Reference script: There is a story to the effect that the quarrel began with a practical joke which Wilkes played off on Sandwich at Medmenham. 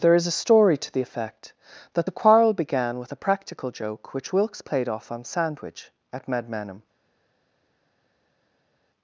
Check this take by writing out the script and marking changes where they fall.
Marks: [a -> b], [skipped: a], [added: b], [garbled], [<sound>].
There is a story to the effect that the quarrel began with a practical joke which Wilkes played off on Sandwich at Medmenham.